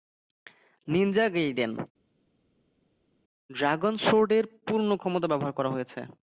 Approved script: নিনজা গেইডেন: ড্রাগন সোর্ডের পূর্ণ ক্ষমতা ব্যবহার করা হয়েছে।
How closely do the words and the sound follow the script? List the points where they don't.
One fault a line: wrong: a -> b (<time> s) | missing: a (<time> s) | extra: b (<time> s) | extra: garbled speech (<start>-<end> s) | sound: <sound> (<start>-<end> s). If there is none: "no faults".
no faults